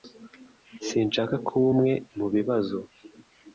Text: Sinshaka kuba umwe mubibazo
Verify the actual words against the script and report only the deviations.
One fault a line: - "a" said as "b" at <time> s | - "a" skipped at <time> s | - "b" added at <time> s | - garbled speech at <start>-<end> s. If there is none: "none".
none